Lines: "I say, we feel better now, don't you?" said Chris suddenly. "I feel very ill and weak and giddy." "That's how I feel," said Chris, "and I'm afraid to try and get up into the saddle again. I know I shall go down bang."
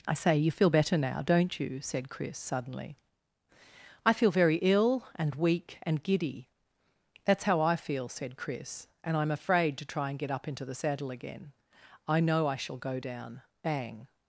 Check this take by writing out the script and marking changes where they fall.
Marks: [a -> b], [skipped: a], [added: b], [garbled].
"I say, [we -> you] feel better now, don't you?" said Chris suddenly. "I feel very ill and weak and giddy." "That's how I feel," said Chris, "and I'm afraid to try and get up into the saddle again. I know I shall go down bang."